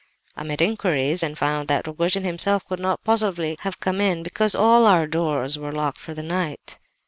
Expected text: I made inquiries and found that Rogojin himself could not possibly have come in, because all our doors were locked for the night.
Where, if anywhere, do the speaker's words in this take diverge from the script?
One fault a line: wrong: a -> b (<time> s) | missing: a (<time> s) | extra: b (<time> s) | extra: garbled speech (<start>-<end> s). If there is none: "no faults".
no faults